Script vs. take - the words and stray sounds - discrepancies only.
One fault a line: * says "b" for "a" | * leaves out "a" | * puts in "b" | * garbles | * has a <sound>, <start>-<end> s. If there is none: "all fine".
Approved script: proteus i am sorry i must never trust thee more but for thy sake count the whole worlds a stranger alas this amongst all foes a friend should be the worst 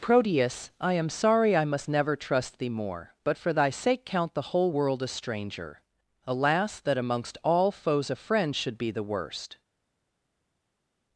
* says "world" for "worlds"
* says "that" for "this"